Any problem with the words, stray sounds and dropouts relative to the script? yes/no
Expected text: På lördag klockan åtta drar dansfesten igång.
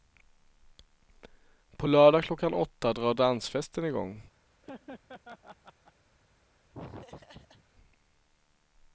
yes